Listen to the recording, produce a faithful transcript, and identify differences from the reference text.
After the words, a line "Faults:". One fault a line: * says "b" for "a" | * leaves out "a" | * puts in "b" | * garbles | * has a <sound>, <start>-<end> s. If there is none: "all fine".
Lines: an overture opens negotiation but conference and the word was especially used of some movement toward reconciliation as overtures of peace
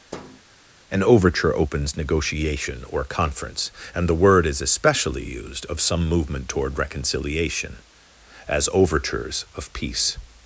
an overture opens negotiation or conference and the word is especially used of some movement toward reconciliation as overtures of peace
Faults:
* has a thud, 0.1-0.4 s
* says "or" for "but"
* says "is" for "was"